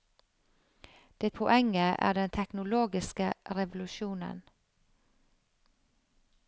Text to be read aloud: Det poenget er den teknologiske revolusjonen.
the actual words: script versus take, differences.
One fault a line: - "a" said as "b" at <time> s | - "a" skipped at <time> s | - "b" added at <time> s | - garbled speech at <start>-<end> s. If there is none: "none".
none